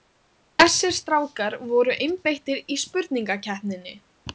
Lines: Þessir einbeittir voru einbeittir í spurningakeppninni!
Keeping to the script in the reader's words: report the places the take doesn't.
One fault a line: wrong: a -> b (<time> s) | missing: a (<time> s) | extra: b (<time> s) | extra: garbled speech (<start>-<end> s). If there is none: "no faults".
wrong: einbeittir -> strákar (1.0 s)